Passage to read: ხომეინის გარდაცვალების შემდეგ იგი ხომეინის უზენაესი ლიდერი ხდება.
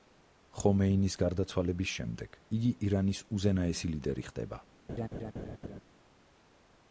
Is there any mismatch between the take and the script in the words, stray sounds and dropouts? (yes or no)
yes